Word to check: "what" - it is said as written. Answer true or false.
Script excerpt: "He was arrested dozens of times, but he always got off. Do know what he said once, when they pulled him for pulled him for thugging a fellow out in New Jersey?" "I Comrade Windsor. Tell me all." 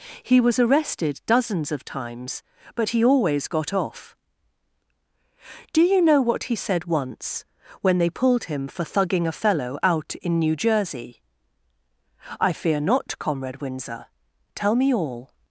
true